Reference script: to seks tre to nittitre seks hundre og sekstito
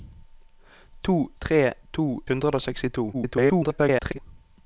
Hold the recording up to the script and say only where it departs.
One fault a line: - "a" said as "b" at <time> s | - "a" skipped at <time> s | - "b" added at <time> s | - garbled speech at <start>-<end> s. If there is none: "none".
- "seks" skipped at 1.3 s
- "nittitre seks" skipped at 2.2 s
- garbled speech at 3.1-4.2 s